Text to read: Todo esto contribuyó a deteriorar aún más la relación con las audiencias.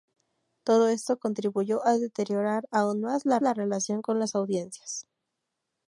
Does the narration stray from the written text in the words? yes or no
yes